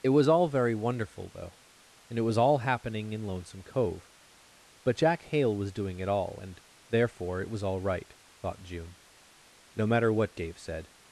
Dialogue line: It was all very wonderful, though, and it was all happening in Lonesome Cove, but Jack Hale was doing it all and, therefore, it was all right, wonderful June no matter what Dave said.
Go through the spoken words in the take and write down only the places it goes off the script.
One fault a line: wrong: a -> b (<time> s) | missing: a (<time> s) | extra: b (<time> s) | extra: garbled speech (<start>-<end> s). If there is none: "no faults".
wrong: wonderful -> thought (8.4 s)